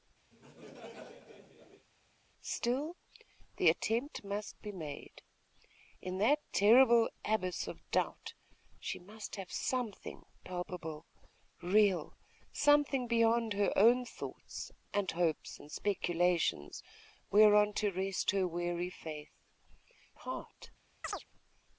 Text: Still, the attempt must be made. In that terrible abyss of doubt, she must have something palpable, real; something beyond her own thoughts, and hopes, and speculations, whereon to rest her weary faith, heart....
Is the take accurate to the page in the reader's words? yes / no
yes